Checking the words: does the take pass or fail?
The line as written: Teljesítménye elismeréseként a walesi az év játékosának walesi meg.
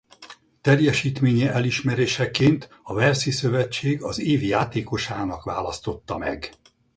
fail